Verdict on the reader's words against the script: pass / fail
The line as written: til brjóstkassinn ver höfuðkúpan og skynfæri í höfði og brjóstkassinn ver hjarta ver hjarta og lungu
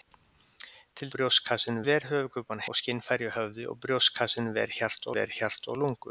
pass